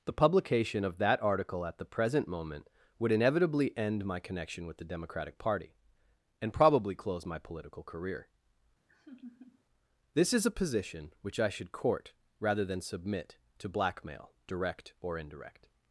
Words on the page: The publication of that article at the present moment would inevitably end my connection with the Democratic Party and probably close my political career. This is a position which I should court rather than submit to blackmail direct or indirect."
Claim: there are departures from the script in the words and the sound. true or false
true